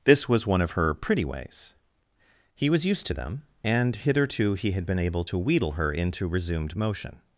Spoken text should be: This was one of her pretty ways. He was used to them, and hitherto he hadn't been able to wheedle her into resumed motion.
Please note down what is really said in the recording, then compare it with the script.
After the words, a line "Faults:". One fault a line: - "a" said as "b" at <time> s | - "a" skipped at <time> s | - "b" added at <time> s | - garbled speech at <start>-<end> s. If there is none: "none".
This was one of her pretty ways. He was used to them, and hitherto he had been able to wheedle her into resumed motion.
Faults:
- "hadn't" said as "had" at 4.7 s